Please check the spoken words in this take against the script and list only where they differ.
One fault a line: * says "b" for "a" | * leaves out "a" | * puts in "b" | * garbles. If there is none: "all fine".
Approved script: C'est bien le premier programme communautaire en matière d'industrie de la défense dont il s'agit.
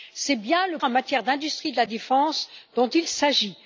* leaves out "premier programme communautaire"